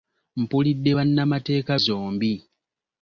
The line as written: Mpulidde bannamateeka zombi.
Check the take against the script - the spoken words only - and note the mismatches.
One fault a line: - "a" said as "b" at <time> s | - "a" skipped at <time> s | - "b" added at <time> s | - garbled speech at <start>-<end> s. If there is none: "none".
none